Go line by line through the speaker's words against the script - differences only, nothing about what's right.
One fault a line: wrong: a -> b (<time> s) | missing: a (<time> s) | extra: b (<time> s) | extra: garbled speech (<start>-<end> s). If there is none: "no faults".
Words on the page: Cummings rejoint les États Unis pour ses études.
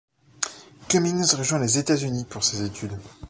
no faults